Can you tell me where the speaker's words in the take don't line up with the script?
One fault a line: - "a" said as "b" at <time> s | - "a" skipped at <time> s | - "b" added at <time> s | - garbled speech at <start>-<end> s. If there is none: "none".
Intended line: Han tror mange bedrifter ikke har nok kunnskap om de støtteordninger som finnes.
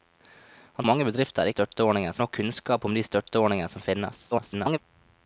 - "tror" skipped at 0.8 s
- "ikke" said as "støtteordninger" at 1.5 s
- garbled speech at 4.3-4.8 s